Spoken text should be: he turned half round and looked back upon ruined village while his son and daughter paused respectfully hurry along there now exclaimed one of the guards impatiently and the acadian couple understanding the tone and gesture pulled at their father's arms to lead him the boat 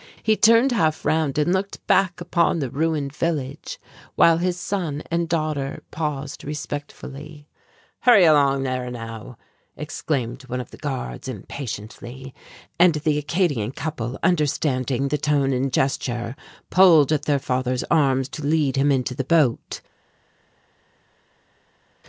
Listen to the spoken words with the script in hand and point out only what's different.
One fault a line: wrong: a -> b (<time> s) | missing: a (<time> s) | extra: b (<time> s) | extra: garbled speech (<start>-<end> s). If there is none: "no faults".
extra: the (2.6 s)
extra: into (18.9 s)